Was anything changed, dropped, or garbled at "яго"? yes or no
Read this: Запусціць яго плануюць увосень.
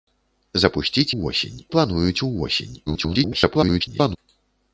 yes